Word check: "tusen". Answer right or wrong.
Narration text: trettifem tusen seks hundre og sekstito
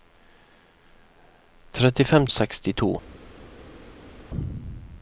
wrong